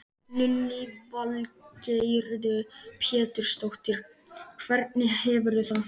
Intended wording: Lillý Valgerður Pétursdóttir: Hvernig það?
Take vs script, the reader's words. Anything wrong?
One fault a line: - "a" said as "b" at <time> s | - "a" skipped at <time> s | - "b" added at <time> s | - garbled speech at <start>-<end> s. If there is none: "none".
- "hefurðu" added at 5.2 s